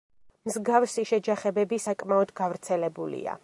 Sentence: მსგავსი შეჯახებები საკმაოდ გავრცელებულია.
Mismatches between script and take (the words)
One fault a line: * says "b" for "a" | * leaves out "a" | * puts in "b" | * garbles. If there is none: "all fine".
all fine